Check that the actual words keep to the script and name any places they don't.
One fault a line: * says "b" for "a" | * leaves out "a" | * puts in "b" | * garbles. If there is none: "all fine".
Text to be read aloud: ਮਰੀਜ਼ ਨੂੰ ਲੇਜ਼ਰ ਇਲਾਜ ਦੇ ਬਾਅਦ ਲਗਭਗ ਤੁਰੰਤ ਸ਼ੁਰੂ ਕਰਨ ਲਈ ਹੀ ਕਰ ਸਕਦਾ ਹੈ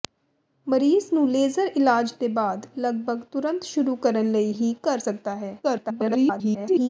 * garbles